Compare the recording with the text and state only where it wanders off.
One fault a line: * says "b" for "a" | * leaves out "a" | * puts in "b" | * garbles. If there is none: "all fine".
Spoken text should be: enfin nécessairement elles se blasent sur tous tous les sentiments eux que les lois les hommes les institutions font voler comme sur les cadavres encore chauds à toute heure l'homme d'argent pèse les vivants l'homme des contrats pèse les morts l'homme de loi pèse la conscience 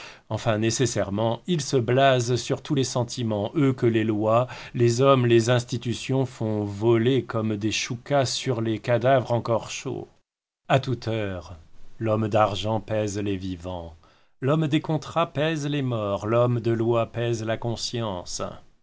* says "ils" for "elles"
* leaves out "tous"
* puts in "des choucas"